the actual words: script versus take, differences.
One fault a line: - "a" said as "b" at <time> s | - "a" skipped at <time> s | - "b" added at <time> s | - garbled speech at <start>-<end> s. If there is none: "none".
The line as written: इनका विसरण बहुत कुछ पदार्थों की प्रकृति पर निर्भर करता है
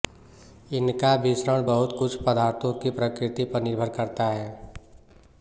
none